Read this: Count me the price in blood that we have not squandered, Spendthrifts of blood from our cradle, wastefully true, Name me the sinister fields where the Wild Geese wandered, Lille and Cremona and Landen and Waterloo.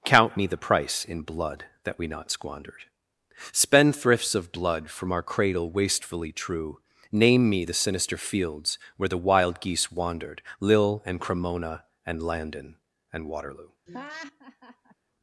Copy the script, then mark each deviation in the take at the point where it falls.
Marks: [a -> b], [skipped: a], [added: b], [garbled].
Count me the price in blood that we [skipped: have] not squandered, Spendthrifts of blood from our cradle, wastefully true, Name me the sinister fields where the Wild Geese wandered, Lille and Cremona and Landen and Waterloo.